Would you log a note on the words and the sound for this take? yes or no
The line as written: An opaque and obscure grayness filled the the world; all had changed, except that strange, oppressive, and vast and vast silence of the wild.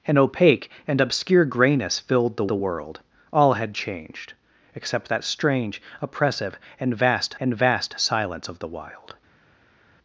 no